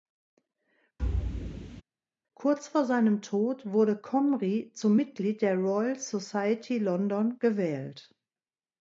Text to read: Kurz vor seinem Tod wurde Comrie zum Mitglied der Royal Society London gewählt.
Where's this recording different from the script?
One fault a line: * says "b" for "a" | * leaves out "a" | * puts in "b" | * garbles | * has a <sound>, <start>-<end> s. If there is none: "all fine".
* has a thud, 1.0-1.8 s